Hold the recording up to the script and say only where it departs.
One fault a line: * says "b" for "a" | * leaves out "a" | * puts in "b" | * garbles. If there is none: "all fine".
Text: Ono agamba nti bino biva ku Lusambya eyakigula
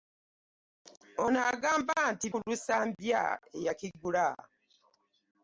* leaves out "bino biva"